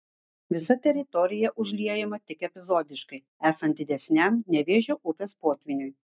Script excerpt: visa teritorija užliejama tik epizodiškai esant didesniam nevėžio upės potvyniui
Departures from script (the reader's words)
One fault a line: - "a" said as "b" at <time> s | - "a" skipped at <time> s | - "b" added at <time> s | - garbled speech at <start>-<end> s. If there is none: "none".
none